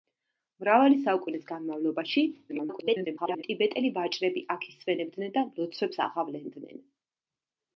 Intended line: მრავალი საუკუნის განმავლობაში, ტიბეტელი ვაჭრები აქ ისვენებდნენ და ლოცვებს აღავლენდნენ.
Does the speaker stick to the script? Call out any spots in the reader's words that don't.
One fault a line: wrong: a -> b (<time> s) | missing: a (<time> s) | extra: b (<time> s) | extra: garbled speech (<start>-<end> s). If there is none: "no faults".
extra: garbled speech (2.5-3.4 s)